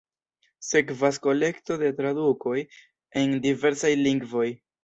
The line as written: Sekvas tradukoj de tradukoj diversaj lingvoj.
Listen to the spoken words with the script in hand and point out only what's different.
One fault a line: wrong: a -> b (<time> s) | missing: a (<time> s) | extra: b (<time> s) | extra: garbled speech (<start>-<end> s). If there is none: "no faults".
wrong: tradukoj -> kolekto (1.2 s)
extra: en (3.2 s)